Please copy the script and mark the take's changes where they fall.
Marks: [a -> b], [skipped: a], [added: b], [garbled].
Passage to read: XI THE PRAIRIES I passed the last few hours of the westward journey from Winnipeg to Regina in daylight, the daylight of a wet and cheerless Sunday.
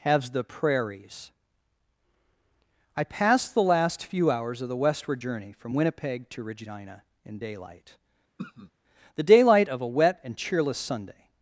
[XI -> Has] THE PRAIRIES I passed the last few hours of the westward journey from Winnipeg to Regina in daylight, the daylight of a wet and cheerless Sunday.